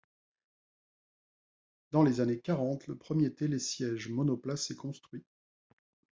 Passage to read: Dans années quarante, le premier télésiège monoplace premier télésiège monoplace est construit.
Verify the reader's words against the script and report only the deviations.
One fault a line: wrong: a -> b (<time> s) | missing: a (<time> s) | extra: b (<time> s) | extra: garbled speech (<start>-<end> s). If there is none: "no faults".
extra: les (2.0 s)
missing: premier télésiège monoplace (4.7 s)